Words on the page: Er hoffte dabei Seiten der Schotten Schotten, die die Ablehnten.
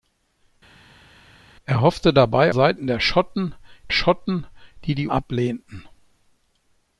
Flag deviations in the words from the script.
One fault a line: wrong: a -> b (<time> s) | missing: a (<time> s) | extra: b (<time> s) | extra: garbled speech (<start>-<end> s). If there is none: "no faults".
no faults